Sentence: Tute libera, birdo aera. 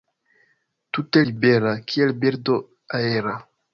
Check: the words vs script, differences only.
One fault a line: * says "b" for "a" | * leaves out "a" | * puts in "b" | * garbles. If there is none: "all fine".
* puts in "kiel"